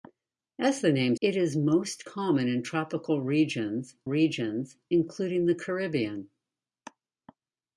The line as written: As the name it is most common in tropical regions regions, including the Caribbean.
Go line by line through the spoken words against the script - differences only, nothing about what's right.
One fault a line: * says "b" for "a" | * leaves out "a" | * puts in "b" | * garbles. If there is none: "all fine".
all fine